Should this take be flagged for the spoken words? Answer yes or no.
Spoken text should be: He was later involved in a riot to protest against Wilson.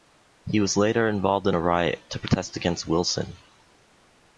no